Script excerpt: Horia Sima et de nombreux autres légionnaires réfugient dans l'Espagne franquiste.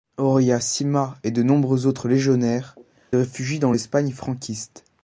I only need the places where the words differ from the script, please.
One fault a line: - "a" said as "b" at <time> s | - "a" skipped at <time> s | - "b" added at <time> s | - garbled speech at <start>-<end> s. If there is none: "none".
none